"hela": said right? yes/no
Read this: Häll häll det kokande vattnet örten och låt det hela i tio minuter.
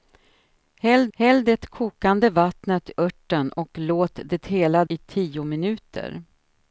yes